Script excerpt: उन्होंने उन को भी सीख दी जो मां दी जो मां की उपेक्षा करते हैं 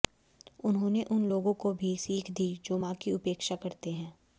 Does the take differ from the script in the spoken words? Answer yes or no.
yes